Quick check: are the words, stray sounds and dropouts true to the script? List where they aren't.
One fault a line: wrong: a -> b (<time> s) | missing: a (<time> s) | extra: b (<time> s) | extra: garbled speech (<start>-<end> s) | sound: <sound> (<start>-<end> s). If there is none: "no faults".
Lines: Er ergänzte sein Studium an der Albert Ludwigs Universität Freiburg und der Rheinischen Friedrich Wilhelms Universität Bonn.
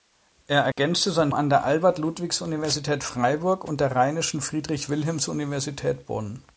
sound: dropout (0.7-0.8 s)
missing: Studium (1.3 s)